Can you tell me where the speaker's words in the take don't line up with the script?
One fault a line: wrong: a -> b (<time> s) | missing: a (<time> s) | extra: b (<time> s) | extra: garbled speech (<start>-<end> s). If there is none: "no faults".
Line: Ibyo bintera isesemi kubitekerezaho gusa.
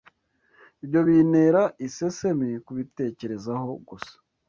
no faults